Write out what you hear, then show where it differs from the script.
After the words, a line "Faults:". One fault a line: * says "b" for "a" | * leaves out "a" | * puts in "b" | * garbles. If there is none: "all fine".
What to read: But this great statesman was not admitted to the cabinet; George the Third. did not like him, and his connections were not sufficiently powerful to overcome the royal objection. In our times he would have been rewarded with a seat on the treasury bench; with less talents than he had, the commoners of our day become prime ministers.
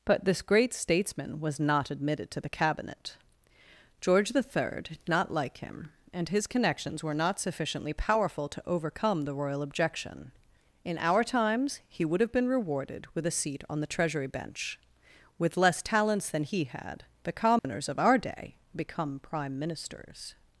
But this great statesman was not admitted to the cabinet; George the Third. did not like him, and his connections were not sufficiently powerful to overcome the royal objection. In our times he would have been rewarded with a seat on the treasury bench; with less talents than he had, the commoners of our day become prime ministers.
Faults:
all fine